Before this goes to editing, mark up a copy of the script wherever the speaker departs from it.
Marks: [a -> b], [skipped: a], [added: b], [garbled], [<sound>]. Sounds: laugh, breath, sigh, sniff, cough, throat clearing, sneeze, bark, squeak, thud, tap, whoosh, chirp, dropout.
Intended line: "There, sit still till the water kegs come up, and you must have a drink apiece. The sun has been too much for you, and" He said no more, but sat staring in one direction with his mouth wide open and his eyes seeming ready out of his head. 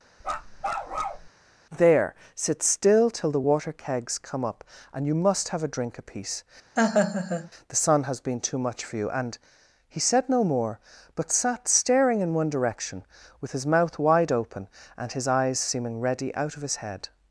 [bark] "There, sit still till the water kegs come up, and you must have a drink apiece. [laugh] The sun has been too much for you, and" He said no more, but sat staring in one direction with his mouth wide open and his eyes seeming ready out of his head.